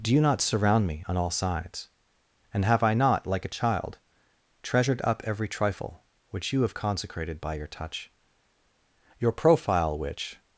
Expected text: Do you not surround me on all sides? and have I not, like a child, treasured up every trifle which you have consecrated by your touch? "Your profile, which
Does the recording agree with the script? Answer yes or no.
yes